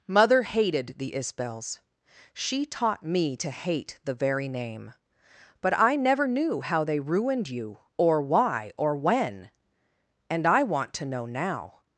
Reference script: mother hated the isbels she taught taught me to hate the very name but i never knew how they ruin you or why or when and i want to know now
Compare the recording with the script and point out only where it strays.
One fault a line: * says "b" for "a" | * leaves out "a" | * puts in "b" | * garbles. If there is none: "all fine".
* leaves out "taught"
* says "ruined" for "ruin"